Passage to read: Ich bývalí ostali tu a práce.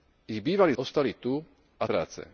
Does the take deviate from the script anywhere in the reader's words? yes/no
no